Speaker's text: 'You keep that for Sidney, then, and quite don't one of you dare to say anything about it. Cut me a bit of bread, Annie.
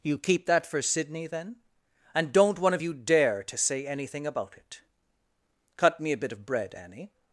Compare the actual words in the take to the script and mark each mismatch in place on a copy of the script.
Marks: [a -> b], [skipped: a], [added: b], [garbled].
'You keep that for Sidney, then, and [skipped: quite] don't one of you dare to say anything about it. Cut me a bit of bread, Annie.